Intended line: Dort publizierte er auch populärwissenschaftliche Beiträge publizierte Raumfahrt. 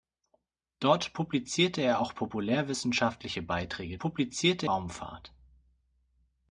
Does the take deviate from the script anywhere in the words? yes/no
no